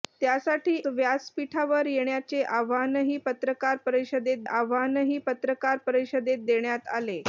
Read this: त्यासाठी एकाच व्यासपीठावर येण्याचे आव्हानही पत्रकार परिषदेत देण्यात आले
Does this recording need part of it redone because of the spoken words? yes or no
yes